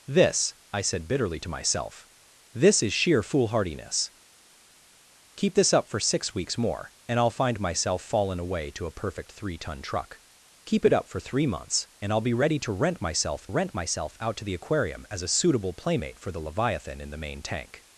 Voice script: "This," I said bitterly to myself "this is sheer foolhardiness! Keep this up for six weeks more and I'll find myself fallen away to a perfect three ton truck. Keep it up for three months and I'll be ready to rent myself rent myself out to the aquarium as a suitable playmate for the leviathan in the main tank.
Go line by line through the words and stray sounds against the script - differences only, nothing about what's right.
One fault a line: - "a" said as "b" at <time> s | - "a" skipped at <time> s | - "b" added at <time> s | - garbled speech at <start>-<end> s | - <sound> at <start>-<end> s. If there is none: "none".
none